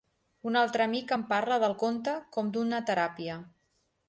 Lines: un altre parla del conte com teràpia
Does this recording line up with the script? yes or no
no